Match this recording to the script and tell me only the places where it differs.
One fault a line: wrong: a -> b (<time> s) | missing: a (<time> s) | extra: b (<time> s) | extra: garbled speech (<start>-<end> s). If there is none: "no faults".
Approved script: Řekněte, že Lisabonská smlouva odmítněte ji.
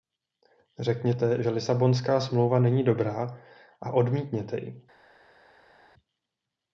extra: není dobrá a (2.6 s)